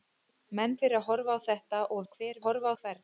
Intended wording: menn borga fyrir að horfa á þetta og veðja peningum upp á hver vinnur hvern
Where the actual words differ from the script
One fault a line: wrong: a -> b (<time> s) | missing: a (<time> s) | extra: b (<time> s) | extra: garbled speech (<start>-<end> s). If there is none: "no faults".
missing: borga (0.7 s)
missing: veðja peningum upp (2.0 s)
wrong: vinnur -> horfa (2.4 s)